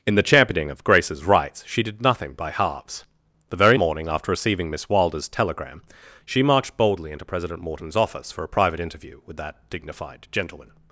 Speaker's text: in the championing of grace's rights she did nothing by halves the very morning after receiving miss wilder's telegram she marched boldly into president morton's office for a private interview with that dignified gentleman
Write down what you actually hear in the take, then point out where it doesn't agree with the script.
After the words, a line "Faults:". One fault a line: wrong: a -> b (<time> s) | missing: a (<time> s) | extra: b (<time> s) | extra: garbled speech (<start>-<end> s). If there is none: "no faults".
in the championing of grace's rights she did nothing by halves the very morning after receiving miss wilder's telegram she marched boldly into president morton's office for a private interview with that dignified gentleman
Faults:
no faults